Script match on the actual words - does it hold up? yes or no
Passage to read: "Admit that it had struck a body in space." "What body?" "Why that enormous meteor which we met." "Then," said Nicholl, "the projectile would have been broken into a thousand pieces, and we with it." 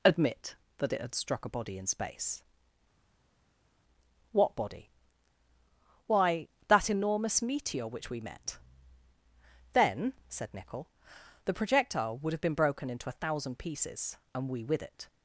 yes